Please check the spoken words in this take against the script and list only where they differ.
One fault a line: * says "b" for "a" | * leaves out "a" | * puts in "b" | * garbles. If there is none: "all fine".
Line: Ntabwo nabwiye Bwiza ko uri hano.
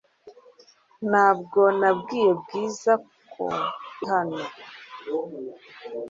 * leaves out "uri"